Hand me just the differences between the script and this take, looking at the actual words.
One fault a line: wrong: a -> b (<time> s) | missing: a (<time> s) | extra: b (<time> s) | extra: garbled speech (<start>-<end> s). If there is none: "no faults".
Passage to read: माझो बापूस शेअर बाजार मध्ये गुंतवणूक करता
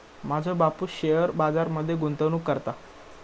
no faults